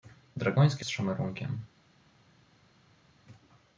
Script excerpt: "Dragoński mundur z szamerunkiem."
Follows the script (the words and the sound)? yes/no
no